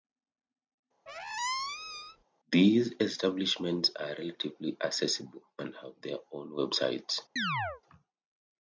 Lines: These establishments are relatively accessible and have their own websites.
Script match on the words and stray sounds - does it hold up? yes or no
no